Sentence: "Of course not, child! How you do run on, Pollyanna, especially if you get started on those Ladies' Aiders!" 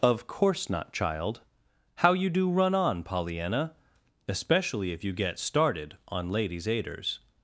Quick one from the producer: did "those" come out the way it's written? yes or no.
no